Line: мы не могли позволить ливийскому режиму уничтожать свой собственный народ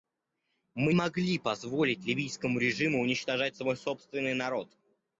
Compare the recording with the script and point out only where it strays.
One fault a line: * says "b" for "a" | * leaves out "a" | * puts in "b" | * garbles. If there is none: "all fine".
* leaves out "не"